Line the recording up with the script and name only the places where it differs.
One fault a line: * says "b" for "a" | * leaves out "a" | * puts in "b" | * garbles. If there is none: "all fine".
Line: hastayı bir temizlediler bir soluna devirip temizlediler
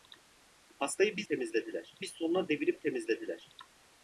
all fine